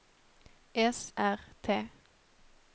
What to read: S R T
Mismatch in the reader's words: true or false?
false